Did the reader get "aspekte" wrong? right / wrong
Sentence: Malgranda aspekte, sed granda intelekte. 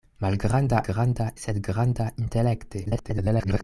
wrong